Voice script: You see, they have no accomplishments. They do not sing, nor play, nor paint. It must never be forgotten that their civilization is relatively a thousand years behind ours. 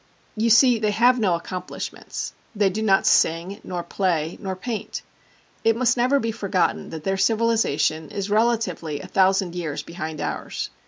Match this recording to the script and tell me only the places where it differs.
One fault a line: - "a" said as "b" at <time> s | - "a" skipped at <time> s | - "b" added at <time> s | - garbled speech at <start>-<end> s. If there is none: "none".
none